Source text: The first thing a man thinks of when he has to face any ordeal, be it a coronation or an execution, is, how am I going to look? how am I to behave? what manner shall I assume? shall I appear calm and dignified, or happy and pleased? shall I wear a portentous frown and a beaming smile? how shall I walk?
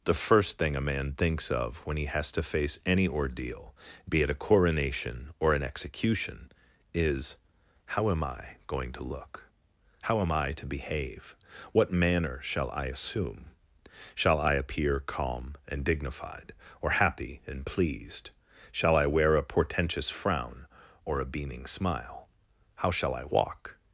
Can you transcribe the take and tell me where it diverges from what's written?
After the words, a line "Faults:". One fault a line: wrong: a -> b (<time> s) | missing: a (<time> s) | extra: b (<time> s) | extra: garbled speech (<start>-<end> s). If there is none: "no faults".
The first thing a man thinks of when he has to face any ordeal, be it a coronation or an execution, is, how am I going to look? how am I to behave? what manner shall I assume? shall I appear calm and dignified, or happy and pleased? shall I wear a portentous frown or a beaming smile? how shall I walk?
Faults:
wrong: and -> or (21.0 s)